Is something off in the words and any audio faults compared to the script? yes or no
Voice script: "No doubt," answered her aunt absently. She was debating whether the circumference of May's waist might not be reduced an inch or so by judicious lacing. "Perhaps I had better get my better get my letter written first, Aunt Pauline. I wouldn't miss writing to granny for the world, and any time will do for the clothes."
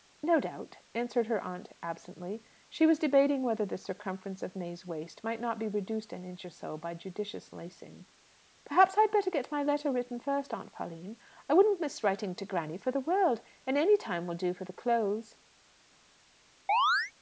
yes